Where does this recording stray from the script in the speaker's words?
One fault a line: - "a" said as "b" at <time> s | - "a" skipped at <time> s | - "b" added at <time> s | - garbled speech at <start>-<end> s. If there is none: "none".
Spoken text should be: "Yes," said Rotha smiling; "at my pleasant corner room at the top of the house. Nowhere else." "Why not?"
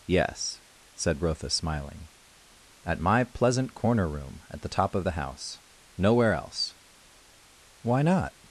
none